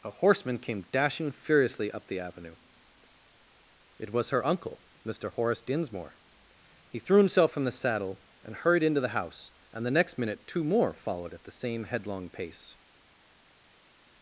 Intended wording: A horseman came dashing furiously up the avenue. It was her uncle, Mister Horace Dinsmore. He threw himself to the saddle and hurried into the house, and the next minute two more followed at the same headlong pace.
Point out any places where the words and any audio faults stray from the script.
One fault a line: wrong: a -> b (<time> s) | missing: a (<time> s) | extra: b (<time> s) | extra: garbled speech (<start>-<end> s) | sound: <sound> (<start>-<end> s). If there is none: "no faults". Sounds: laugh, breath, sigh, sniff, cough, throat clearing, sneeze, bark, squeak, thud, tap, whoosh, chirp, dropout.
wrong: to -> from (7.5 s)